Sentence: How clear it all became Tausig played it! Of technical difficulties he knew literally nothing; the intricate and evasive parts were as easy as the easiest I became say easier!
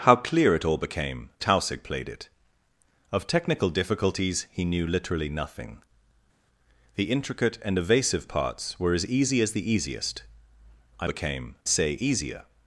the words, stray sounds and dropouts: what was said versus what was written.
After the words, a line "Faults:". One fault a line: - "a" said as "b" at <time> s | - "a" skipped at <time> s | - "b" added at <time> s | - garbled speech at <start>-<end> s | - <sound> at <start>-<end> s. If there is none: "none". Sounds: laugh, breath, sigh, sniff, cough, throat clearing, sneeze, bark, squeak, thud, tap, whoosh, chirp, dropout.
How clear it all became Tausig played it! Of technical difficulties he knew literally nothing; the intricate and evasive parts were as easy as the easiest I became say easier!
Faults:
none